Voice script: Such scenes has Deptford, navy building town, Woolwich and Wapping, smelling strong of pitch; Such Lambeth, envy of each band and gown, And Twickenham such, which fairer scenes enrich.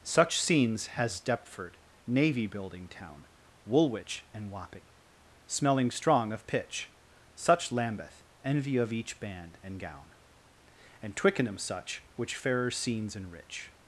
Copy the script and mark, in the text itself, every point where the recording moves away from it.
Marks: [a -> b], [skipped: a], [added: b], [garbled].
Such scenes has Deptford, navy building town, Woolwich and Wapping, smelling strong of pitch; Such Lambeth, envy of each band and gown, And Twickenham such, which fairer scenes enrich.